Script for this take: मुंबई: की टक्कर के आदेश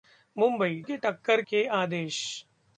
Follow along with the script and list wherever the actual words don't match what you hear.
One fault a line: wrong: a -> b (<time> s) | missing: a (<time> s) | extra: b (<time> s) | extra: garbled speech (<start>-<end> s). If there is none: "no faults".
no faults